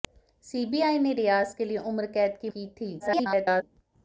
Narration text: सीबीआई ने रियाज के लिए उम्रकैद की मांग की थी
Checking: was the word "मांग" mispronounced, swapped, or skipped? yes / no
yes